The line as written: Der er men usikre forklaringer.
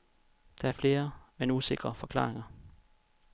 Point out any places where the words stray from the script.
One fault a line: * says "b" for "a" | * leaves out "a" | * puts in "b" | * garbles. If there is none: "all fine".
* puts in "flere"